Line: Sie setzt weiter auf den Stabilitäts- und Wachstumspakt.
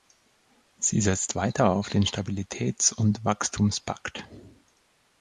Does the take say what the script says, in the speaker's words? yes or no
yes